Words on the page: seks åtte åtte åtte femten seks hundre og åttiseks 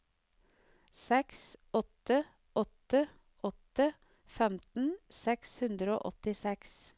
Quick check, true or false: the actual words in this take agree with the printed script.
true